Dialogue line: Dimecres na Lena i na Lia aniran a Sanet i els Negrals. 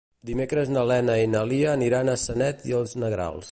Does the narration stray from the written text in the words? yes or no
no